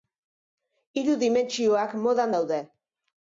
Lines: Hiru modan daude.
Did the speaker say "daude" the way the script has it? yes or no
yes